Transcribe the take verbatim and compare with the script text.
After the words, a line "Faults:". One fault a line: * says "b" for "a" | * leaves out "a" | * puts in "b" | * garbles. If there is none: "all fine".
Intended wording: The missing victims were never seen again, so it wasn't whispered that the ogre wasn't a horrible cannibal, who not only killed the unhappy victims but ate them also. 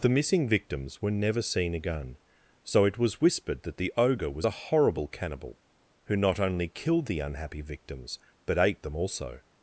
The missing victims were never seen again, so it was whispered that the ogre was a horrible cannibal, who not only killed the unhappy victims but ate them also.
Faults:
* says "was" for "wasn't"
* says "was" for "wasn't"